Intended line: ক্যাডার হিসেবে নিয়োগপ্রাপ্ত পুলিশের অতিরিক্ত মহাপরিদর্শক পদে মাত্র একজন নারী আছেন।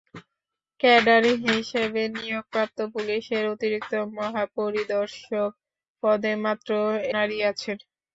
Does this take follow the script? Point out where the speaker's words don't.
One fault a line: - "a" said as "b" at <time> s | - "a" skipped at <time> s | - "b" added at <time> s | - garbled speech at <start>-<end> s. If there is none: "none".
- "একজন" skipped at 6.7 s